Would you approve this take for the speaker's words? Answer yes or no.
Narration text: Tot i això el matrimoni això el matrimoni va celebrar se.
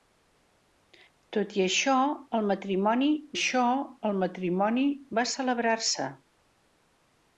yes